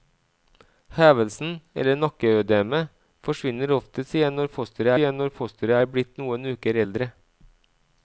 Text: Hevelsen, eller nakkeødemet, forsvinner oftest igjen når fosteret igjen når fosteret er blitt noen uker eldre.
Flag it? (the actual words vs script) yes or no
no